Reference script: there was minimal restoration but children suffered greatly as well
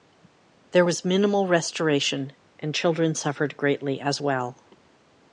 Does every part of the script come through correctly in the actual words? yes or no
no